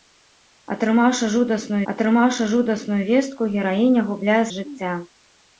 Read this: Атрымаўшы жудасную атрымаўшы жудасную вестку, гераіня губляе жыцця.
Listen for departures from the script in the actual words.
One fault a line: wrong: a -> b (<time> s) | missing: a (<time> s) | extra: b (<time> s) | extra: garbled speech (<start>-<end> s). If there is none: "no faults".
no faults